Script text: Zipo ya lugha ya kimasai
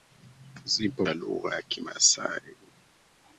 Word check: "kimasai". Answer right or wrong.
right